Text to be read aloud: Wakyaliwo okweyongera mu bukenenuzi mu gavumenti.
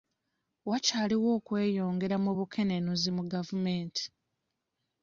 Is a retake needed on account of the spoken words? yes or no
no